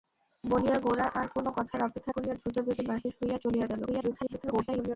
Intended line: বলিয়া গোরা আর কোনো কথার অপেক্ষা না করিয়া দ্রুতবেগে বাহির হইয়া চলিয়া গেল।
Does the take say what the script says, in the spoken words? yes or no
no